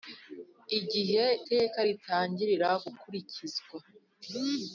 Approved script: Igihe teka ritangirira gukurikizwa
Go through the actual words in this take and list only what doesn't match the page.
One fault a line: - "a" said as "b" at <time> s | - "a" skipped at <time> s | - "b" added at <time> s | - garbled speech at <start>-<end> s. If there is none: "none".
none